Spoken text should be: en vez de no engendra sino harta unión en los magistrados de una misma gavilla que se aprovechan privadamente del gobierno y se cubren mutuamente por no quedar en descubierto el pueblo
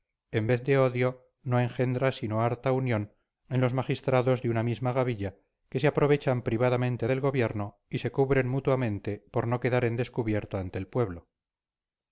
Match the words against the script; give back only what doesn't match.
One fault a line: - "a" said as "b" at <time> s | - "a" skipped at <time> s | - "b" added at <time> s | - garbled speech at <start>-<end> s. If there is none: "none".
- "odio" added at 0.8 s
- "ante" added at 10.6 s